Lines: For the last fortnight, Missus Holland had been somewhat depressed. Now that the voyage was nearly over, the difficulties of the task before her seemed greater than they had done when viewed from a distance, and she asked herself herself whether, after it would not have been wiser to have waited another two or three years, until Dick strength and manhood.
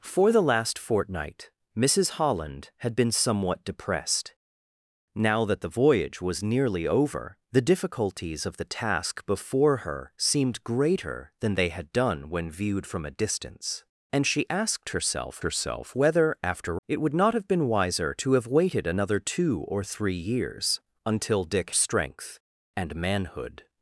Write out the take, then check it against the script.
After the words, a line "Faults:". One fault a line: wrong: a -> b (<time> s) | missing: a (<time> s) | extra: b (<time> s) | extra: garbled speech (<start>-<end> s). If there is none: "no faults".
For the last fortnight, Missus Holland had been somewhat depressed. Now that the voyage was nearly over, the difficulties of the task before her seemed greater than they had done when viewed from a distance, and she asked herself herself whether, after it would not have been wiser to have waited another two or three years, until Dick strength and manhood.
Faults:
no faults